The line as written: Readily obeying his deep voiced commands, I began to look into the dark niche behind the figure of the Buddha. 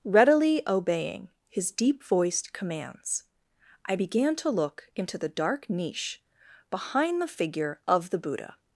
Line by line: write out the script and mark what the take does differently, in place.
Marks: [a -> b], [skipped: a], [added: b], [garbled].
Readily obeying his deep voiced commands, I began to look into the dark niche behind the figure of the Buddha.